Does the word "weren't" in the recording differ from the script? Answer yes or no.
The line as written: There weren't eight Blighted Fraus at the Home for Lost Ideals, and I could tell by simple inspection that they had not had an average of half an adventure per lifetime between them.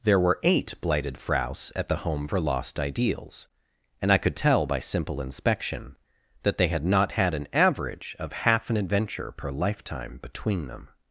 yes